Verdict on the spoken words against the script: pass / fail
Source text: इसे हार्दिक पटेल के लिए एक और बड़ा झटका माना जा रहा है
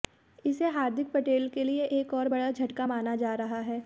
pass